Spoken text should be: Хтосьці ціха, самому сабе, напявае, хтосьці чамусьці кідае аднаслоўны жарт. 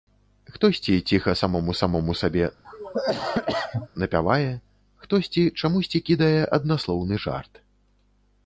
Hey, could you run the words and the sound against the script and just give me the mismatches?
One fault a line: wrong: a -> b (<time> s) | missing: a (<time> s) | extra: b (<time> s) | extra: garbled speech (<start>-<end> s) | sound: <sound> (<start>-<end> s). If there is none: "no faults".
extra: самому (1.8 s)
sound: cough (2.6-3.9 s)